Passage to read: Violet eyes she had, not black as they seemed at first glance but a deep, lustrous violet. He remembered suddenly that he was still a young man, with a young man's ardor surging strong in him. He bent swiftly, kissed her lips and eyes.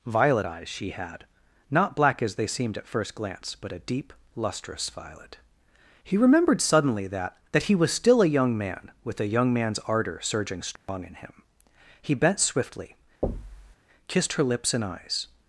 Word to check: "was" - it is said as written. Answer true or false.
true